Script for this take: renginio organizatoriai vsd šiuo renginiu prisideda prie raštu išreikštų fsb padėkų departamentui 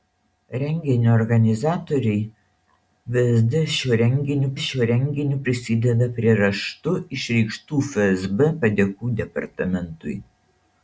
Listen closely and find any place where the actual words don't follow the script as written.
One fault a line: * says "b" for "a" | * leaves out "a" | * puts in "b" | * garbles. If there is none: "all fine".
* puts in "šiuo renginiu"